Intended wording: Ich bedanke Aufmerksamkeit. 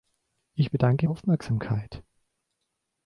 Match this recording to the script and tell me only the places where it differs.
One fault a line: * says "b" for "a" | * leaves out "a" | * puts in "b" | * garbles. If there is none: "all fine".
all fine